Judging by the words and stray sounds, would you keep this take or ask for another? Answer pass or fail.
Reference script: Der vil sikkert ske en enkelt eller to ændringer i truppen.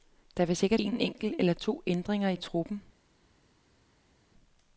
fail